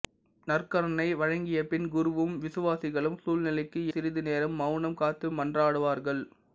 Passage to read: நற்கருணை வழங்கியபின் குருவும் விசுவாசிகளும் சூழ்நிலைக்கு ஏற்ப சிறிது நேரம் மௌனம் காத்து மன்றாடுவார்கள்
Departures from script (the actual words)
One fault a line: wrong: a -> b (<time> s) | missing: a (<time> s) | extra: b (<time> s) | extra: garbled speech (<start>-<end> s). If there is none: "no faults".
missing: ஏற்ப (3.8 s)